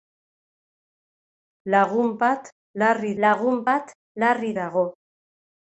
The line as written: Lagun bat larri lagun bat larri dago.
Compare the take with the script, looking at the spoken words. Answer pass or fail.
pass